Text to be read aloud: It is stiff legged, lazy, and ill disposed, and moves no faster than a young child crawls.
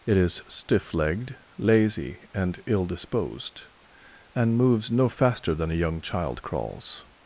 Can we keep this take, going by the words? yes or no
yes